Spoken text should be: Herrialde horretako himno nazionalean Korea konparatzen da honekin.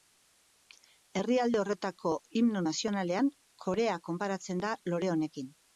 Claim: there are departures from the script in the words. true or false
true